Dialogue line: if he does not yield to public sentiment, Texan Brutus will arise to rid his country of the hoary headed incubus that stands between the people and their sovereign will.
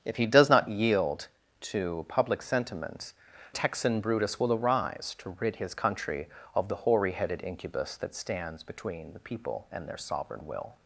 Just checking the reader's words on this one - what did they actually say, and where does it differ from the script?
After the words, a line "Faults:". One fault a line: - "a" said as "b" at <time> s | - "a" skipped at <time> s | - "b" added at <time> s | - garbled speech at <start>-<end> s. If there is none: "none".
if he does not yield to public sentiment, Texan Brutus will arise to rid his country of the hoary headed incubus that stands between the people and their sovereign will.
Faults:
none